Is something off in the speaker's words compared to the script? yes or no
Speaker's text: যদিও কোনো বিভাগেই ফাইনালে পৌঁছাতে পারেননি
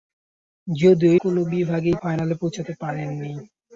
no